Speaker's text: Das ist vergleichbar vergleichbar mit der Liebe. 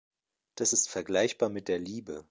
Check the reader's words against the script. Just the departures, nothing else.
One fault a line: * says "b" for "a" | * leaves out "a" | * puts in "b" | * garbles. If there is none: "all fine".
* leaves out "vergleichbar"